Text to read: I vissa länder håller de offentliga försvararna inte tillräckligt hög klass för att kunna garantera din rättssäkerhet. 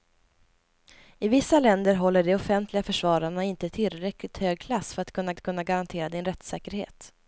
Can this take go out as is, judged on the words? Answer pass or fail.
fail